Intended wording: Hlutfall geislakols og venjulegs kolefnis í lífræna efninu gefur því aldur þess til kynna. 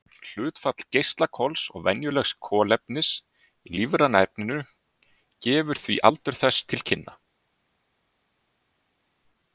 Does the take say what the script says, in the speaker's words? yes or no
yes